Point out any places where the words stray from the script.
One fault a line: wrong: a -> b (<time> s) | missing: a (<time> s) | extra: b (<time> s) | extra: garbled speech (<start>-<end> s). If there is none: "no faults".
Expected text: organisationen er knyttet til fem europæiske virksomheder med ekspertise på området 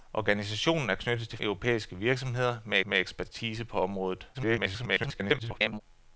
missing: fem (1.4 s)
extra: med (2.8 s)
extra: garbled speech (4.3-5.8 s)